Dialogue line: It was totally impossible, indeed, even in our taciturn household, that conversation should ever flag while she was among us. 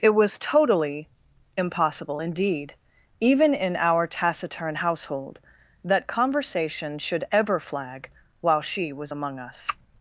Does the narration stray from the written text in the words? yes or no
no